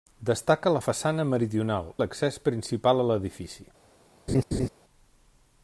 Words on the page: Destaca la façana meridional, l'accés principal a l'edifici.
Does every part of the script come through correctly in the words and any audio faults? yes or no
no